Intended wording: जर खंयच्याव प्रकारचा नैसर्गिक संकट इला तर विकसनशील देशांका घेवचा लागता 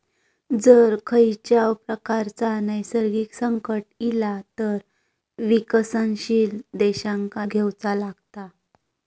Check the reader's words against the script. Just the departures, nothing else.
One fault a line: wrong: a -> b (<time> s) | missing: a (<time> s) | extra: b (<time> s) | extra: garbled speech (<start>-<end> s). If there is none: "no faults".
no faults